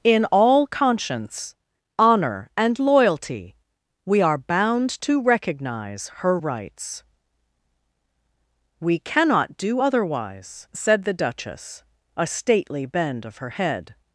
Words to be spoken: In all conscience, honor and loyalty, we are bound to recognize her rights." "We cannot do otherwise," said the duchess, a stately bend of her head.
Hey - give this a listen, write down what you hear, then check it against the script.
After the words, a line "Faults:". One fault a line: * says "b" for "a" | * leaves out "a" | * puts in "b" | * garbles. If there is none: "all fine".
In all conscience, honor and loyalty, we are bound to recognize her rights." "We cannot do otherwise," said the duchess, a stately bend of her head.
Faults:
all fine